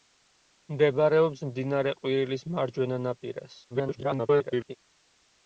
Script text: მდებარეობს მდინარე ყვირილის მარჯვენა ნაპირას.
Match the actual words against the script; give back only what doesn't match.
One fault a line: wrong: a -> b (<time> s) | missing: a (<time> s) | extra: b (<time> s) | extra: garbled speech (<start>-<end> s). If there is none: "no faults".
extra: garbled speech (3.7-4.8 s)